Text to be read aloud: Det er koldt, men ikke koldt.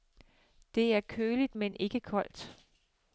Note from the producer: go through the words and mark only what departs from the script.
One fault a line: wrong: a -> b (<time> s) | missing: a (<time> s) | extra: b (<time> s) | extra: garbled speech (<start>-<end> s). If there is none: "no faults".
wrong: koldt -> køligt (1.0 s)